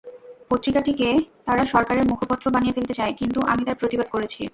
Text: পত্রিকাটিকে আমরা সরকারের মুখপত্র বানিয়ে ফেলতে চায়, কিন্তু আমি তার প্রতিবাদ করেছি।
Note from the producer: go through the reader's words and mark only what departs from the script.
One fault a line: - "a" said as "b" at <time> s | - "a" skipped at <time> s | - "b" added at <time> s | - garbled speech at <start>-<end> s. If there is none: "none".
- "আমরা" said as "তারা" at 1.4 s